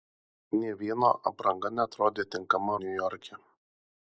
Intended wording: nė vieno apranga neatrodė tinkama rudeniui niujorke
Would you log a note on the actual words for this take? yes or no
yes